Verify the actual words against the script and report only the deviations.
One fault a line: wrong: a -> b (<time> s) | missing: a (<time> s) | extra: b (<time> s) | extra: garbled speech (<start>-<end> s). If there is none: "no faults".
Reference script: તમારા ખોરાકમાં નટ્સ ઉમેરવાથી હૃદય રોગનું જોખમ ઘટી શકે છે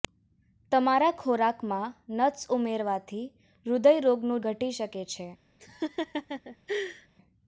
missing: જોખમ (4.4 s)